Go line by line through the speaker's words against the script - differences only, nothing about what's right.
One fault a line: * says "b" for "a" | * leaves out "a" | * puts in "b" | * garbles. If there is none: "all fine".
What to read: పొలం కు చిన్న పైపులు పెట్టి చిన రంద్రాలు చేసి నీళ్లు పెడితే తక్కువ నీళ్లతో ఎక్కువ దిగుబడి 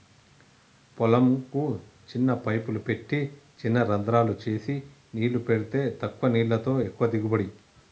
all fine